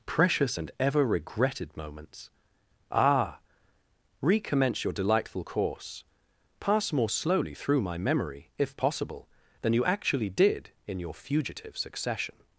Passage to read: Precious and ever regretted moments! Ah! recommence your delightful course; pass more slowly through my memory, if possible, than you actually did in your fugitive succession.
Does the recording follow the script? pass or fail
pass